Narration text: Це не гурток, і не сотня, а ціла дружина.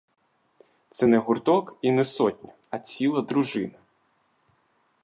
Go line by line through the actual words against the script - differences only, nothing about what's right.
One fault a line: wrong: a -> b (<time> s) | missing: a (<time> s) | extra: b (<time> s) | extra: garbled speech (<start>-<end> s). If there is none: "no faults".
no faults